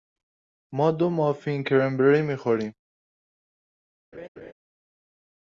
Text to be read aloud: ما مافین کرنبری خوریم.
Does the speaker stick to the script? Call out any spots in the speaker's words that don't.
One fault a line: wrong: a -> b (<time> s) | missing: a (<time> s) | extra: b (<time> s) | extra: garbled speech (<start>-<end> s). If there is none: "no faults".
extra: دو (0.9 s)
extra: می (2.2 s)